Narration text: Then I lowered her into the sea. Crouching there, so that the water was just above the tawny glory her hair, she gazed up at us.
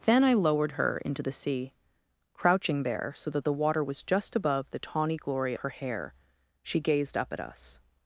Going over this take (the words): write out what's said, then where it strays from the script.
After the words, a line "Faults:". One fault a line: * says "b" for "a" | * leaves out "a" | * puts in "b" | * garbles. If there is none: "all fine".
Then I lowered her into the sea. Crouching there, so that the water was just above the tawny glory her hair, she gazed up at us.
Faults:
all fine